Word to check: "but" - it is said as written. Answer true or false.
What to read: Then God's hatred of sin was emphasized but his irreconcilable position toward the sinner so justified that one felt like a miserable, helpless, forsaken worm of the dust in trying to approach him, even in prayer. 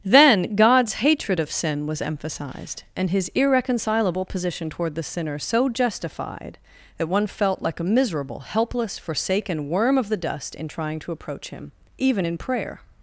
false